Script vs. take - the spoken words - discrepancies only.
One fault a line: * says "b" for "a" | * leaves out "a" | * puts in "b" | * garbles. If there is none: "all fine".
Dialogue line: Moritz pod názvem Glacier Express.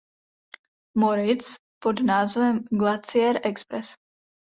all fine